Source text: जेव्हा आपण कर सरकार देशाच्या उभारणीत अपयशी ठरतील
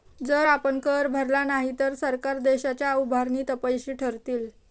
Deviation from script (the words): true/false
true